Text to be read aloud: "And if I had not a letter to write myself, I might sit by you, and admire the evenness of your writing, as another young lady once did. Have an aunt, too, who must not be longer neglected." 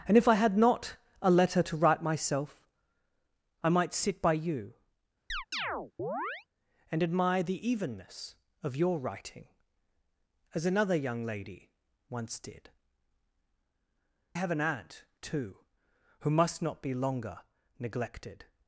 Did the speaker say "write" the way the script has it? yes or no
yes